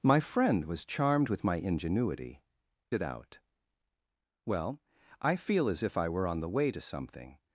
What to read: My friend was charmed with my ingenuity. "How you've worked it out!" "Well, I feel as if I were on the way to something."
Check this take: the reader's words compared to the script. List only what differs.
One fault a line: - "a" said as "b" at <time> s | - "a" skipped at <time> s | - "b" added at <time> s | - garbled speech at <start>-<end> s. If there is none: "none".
- "How you've worked" skipped at 2.4 s